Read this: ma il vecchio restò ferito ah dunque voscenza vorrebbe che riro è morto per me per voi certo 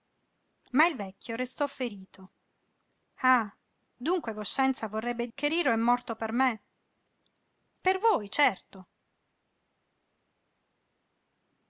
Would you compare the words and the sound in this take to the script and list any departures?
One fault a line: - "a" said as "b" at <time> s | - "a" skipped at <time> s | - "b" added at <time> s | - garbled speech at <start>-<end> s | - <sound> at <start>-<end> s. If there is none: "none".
none